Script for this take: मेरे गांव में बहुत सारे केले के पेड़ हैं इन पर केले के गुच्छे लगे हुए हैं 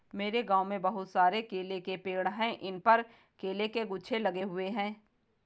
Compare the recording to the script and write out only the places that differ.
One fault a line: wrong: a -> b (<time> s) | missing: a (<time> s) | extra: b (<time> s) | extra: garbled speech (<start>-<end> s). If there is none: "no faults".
no faults